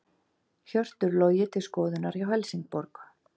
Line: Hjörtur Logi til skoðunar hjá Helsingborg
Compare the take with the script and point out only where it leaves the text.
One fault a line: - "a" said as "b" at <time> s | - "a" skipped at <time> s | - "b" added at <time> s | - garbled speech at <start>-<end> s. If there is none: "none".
none